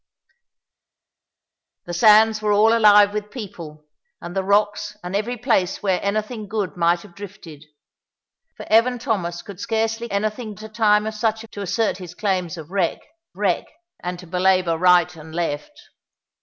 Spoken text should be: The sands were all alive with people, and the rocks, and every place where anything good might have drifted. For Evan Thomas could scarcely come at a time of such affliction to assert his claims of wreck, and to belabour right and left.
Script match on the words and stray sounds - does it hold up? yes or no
no